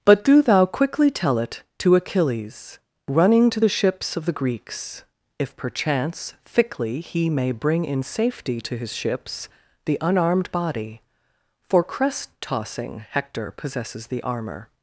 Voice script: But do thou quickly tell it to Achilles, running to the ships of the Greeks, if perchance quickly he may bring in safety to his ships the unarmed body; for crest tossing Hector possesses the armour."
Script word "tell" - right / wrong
right